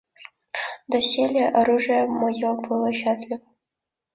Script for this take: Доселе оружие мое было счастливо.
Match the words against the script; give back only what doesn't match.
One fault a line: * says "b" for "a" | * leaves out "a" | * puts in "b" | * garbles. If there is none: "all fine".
all fine